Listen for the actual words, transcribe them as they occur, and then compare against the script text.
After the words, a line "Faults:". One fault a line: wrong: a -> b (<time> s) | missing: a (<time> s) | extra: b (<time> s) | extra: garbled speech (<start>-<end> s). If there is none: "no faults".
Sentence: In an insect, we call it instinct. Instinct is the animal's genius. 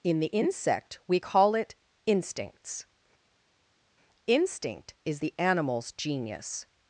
In the insect, we call it instincts. Instinct is the animal's genius.
Faults:
wrong: an -> the (0.2 s)
wrong: instinct -> instincts (2.1 s)